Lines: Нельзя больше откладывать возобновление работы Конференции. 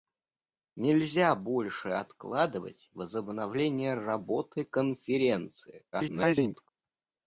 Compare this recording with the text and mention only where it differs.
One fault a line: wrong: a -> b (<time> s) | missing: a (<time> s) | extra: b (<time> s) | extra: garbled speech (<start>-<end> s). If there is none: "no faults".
extra: garbled speech (5.9-6.7 s)